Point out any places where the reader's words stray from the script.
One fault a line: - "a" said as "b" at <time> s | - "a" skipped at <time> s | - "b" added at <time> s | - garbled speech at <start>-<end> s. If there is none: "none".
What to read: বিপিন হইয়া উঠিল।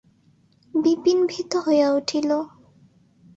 - "ভীত" added at 1.3 s